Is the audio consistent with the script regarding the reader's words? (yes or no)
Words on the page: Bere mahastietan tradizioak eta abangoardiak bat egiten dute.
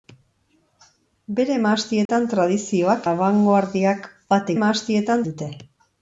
no